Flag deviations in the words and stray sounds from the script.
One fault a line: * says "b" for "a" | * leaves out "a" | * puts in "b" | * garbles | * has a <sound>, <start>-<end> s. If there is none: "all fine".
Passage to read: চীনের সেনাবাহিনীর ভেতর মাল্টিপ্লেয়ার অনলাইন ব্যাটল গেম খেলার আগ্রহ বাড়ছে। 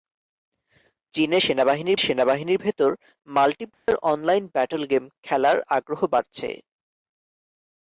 * puts in "সেনাবাহিনীর"
* has a dropout, 3.7-3.9 s